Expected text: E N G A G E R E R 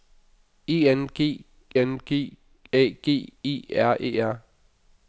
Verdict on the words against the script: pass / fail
fail